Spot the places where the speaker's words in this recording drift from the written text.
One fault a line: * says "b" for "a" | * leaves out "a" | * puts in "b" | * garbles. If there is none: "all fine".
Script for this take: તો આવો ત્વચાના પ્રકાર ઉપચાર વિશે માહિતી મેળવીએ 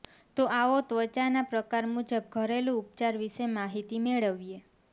* puts in "મુજબ ઘરેલુ"